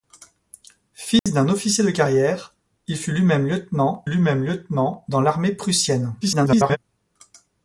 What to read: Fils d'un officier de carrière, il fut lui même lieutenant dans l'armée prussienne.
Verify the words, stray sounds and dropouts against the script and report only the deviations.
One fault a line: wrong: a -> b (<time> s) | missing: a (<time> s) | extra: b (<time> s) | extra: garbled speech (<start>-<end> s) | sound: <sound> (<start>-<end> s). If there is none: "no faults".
sound: dropout (1.2-1.3 s)
extra: lui même lieutenant (4.1 s)
extra: garbled speech (6.2-6.8 s)